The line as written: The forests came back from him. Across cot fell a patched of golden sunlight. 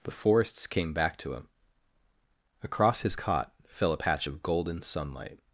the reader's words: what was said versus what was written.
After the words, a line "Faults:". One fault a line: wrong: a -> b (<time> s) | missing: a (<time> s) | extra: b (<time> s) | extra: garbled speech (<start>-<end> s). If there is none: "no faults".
The forests came back to him. Across his cot fell a patch of golden sunlight.
Faults:
wrong: from -> to (1.2 s)
extra: his (3.0 s)
wrong: patched -> patch (3.9 s)